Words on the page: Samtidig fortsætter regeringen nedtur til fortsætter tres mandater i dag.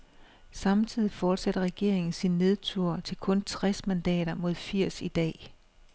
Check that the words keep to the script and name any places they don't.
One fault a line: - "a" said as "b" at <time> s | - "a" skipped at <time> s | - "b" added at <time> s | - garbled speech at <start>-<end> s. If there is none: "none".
- "sin" added at 2.1 s
- "fortsætter" said as "kun" at 3.2 s
- "mod firs" added at 4.3 s